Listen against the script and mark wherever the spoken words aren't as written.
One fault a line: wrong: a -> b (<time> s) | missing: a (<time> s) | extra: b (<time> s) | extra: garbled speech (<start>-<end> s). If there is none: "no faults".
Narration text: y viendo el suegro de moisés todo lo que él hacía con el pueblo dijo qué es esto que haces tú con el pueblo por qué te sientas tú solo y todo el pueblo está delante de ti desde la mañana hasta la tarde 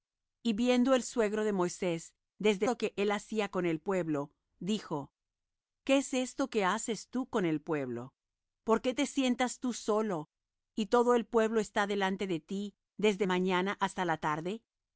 wrong: todo -> desde (2.4 s)
missing: la (13.3 s)